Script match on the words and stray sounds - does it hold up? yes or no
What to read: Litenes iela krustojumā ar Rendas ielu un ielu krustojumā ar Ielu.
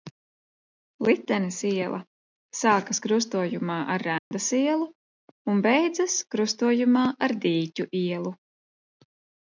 no